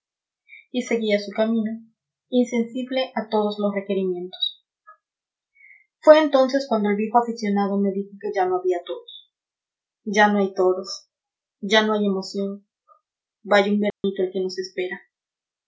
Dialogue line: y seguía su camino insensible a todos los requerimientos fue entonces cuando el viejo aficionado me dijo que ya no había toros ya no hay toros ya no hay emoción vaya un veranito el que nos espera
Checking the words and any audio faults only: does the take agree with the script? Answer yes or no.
no